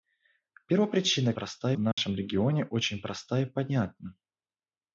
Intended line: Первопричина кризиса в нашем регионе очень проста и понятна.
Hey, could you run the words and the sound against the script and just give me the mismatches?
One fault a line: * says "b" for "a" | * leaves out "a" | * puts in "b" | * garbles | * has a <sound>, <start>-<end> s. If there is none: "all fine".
* says "проста" for "кризиса"
* has a dropout, 1.9-2.0 s